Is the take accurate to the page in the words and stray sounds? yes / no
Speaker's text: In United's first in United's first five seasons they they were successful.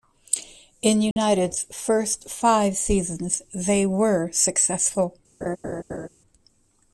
no